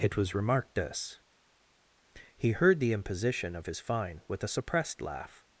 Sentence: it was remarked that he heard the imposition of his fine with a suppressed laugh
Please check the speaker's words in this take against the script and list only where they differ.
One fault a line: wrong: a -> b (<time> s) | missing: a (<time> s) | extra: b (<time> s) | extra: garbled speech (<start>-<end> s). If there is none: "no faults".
wrong: that -> this (0.7 s)